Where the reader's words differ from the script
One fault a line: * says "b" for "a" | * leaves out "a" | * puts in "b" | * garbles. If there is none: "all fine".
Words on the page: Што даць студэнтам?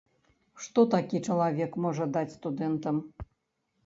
* puts in "такі чалавек можа"